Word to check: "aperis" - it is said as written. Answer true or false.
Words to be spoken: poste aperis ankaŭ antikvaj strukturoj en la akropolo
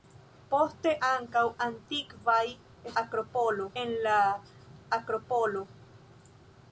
false